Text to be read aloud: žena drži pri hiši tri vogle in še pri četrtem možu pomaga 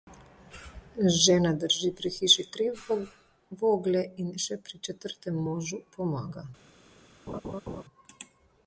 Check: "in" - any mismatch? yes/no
no